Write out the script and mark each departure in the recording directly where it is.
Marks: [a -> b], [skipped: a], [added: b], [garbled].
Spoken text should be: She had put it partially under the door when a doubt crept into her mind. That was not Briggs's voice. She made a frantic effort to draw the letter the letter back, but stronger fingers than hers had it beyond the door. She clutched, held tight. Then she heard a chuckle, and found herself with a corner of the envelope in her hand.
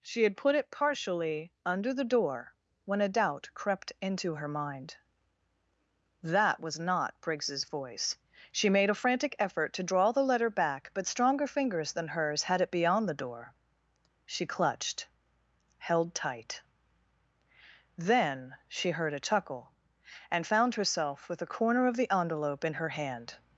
She had put it partially under the door when a doubt crept into her mind. That was not Briggs's voice. She made a frantic effort to draw the letter [skipped: the letter] back, but stronger fingers than hers had it beyond the door. She clutched, held tight. Then she heard a chuckle, and found herself with a corner of the envelope in her hand.